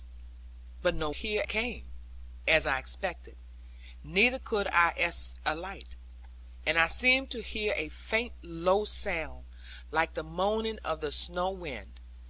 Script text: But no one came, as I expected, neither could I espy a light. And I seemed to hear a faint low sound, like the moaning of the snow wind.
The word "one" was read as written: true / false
false